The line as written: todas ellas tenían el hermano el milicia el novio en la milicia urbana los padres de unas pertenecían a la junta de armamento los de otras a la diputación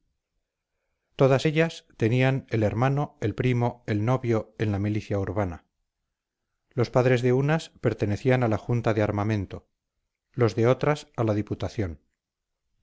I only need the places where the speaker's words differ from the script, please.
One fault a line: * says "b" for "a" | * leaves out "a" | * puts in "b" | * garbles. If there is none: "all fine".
* says "primo" for "milicia"